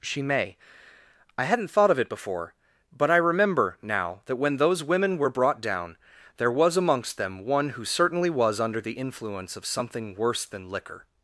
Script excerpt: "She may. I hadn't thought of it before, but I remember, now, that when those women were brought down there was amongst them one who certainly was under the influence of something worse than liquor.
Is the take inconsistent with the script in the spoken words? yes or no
no